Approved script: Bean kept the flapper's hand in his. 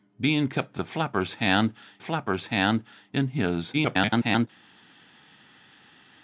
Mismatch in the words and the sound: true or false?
true